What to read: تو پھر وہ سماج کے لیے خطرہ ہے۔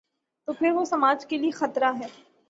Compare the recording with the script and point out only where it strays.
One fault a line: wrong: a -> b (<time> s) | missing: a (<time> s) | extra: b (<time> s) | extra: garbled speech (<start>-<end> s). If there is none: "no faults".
no faults